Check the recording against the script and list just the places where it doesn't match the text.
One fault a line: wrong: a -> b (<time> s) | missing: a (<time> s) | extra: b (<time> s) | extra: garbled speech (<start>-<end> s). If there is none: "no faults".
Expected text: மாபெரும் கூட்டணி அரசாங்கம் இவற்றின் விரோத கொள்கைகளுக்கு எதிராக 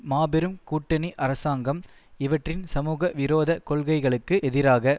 extra: சமூக (2.6 s)